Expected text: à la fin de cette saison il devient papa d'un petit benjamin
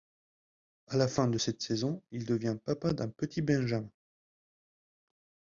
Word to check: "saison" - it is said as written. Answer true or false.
true